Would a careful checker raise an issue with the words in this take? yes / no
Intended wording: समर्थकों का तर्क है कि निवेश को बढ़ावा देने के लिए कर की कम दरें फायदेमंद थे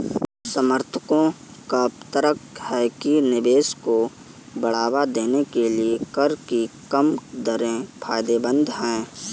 yes